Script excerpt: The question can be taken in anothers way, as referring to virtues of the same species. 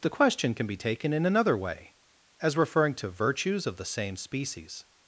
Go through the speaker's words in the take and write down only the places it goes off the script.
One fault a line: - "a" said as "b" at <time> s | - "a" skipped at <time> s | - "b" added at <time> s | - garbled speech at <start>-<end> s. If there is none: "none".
- "anothers" said as "another" at 1.2 s